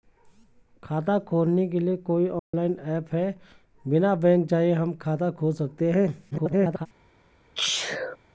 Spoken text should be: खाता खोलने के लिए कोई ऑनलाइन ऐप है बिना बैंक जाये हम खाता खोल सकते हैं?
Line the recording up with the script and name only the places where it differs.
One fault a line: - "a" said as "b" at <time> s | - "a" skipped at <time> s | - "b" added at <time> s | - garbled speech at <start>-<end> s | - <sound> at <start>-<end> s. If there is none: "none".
- dropout at 2.4-2.5 s
- garbled speech at 6.3-6.9 s
- sneeze at 7.6-8.2 s